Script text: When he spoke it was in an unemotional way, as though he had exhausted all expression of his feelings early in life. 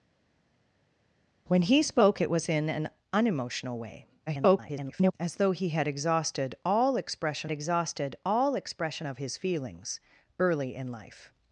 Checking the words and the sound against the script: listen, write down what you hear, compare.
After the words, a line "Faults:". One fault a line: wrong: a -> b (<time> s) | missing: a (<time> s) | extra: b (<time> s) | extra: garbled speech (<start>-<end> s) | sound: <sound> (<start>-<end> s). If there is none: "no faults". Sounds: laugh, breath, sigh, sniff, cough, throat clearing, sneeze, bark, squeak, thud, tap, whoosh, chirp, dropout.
When he spoke it was in an unemotional way, [garbled] as though he had exhausted all expression exhausted all expression of his feelings early in life.
Faults:
extra: garbled speech (4.3-5.1 s)
extra: exhausted all expression (7.5 s)